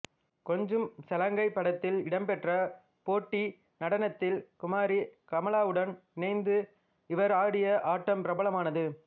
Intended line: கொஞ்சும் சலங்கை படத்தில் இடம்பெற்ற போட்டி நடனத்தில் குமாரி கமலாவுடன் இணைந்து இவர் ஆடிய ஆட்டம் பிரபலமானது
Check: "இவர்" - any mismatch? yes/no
no